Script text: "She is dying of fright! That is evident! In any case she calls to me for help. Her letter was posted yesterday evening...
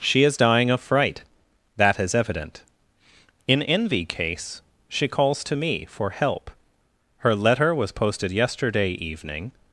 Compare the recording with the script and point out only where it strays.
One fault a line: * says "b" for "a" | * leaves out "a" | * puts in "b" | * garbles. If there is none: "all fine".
* says "envy" for "any"